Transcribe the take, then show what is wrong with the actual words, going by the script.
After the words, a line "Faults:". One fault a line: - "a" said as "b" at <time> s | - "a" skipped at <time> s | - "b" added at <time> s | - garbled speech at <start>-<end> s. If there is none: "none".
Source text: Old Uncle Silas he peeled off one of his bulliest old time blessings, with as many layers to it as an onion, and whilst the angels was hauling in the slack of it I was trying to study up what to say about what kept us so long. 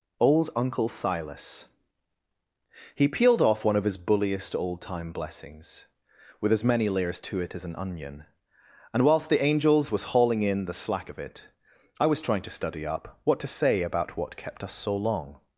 Old Uncle Silas he peeled off one of his bulliest old time blessings, with as many layers to it as an onion, and whilst the angels was hauling in the slack of it I was trying to study up what to say about what kept us so long.
Faults:
none